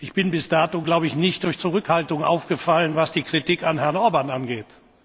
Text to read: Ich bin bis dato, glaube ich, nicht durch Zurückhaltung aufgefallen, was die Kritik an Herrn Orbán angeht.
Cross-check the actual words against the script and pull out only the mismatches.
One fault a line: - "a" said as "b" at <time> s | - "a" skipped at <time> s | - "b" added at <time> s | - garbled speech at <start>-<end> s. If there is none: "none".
none